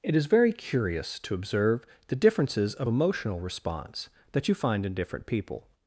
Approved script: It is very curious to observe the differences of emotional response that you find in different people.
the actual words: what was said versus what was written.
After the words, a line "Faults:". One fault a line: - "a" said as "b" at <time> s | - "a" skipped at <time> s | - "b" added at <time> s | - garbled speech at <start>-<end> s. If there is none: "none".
It is very curious to observe the differences of emotional response that you find in different people.
Faults:
none